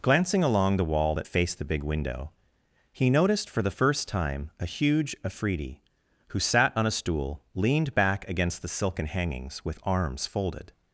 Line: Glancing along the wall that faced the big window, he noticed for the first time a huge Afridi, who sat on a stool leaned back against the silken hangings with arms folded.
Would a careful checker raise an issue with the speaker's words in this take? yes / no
no